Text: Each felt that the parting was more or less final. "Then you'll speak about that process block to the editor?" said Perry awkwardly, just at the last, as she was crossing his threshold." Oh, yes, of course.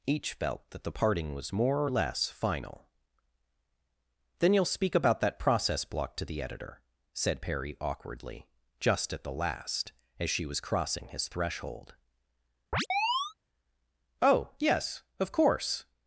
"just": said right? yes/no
yes